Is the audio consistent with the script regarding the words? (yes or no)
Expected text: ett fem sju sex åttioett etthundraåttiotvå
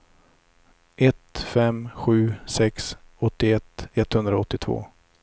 yes